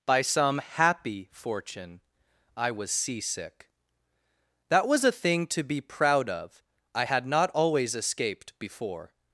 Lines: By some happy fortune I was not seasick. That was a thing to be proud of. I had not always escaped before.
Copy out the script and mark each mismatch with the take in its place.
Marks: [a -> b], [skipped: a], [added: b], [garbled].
By some happy fortune I was [skipped: not] seasick. That was a thing to be proud of. I had not always escaped before.